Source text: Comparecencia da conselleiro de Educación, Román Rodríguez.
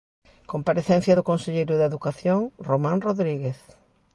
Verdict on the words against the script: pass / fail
fail